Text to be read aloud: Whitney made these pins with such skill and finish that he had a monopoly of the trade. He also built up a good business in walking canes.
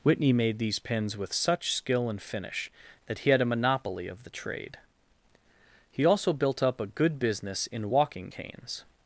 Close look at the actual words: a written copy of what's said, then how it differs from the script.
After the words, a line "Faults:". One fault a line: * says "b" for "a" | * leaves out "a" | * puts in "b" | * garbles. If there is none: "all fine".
Whitney made these pins with such skill and finish that he had a monopoly of the trade. He also built up a good business in walking canes.
Faults:
all fine